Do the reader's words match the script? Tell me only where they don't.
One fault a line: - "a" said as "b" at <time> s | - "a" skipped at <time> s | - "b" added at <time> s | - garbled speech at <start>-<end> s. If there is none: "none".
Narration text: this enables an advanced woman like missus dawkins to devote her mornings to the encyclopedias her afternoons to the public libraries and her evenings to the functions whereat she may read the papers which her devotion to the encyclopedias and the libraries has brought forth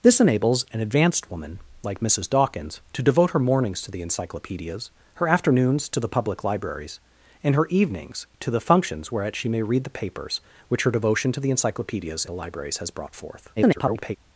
- "and" skipped at 12.2 s
- garbled speech at 13.6-14.2 s